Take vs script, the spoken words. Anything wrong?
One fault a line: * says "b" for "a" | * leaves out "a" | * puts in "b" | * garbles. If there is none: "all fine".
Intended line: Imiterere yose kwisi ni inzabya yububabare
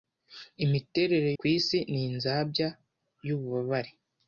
* leaves out "yose"